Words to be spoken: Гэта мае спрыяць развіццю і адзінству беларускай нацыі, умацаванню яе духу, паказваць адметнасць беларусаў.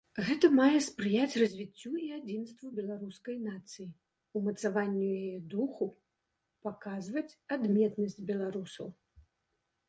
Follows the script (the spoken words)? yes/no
yes